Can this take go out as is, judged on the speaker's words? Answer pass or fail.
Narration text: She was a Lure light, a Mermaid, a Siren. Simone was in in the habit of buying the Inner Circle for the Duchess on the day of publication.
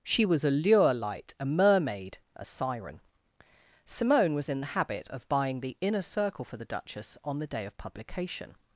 fail